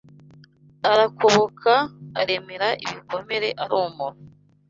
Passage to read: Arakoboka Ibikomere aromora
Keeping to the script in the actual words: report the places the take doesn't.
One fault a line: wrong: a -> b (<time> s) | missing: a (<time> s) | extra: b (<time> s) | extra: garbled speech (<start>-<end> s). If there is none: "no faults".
extra: aremera (2.2 s)